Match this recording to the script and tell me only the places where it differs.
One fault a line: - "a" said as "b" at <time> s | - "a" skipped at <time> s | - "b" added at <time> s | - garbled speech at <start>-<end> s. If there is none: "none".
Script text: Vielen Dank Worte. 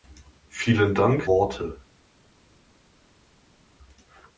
none